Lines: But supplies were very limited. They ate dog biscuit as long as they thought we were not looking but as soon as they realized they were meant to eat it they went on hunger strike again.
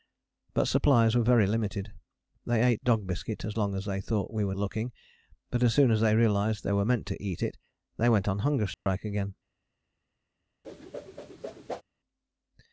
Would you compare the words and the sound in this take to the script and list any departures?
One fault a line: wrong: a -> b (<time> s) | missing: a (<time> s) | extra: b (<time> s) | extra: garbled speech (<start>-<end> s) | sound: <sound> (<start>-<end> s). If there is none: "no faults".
missing: not (4.5 s)
sound: dropout (8.7-8.9 s)
sound: whoosh (10.6-11.8 s)